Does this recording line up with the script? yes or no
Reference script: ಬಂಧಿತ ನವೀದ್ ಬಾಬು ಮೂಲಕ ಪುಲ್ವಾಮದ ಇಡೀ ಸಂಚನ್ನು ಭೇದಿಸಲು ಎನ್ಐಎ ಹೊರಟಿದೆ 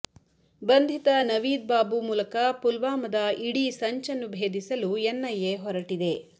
yes